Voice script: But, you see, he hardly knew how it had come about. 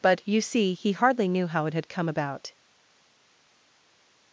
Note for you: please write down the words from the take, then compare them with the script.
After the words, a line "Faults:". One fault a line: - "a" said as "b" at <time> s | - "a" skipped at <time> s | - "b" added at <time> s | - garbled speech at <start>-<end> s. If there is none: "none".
But, you see, he hardly knew how it had come about.
Faults:
none